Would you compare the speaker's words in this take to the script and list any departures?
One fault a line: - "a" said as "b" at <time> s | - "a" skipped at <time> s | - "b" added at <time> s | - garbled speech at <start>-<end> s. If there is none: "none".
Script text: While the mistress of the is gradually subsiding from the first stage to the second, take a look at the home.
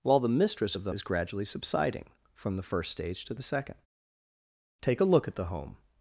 none